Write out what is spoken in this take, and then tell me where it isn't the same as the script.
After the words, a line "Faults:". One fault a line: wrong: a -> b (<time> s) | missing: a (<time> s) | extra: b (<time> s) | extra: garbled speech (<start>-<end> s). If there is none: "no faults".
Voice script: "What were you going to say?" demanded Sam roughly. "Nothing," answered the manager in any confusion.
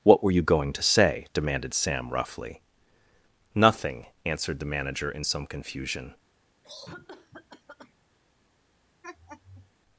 "What were you going to say?" demanded Sam roughly. "Nothing," answered the manager in some confusion.
Faults:
wrong: any -> some (5.2 s)